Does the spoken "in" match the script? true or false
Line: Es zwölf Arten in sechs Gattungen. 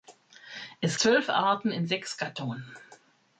true